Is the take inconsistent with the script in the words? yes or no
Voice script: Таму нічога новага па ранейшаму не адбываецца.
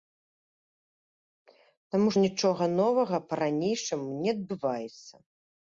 no